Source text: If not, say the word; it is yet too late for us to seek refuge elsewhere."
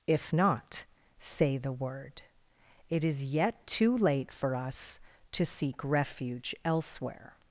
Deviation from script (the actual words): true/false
false